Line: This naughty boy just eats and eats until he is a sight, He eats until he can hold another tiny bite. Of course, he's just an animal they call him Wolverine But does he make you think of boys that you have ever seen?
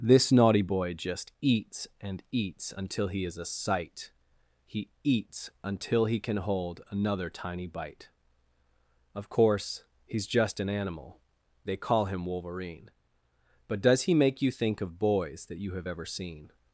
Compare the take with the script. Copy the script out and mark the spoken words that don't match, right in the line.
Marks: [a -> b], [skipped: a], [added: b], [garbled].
This naughty boy just eats and eats until he is a sight, He eats until he can hold another tiny bite. Of course, he's just an animal they call him Wolverine But does he make you think of boys that you have ever seen?